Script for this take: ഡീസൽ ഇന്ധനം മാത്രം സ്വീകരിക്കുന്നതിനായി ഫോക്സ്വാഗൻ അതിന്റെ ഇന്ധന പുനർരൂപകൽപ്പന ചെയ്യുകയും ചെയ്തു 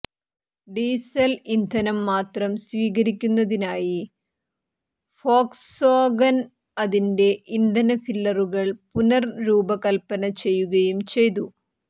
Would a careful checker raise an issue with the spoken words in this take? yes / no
yes